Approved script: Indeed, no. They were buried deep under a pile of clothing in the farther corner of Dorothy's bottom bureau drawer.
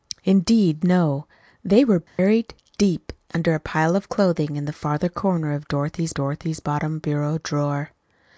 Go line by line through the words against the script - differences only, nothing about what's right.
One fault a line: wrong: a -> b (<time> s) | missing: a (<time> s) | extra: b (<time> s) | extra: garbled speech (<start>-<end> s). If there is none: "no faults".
extra: Dorothy's (6.1 s)